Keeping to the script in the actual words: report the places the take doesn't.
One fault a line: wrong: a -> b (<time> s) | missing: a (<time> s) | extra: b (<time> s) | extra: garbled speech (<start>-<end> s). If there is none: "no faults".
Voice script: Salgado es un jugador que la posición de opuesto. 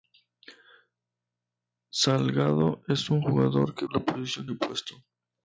no faults